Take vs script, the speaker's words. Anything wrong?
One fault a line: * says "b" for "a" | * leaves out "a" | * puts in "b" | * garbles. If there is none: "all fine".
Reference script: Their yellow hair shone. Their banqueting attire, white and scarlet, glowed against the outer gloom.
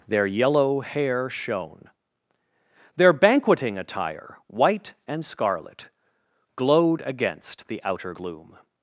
all fine